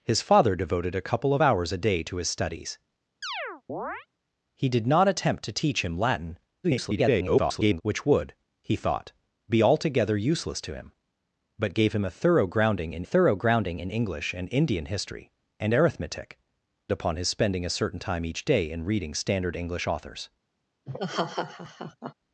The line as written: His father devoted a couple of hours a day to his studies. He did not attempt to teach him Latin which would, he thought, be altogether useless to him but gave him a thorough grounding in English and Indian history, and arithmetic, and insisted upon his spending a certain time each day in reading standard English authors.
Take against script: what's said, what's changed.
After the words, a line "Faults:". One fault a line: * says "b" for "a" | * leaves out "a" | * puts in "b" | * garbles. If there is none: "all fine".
His father devoted a couple of hours a day to his studies. He did not attempt to teach him Latin [garbled] which would, he thought, be altogether useless to him but gave him a thorough grounding in thorough grounding in English and Indian history, and arithmetic, upon his spending a certain time each day in reading standard English authors.
Faults:
* garbles
* puts in "thorough grounding in"
* leaves out "and insisted"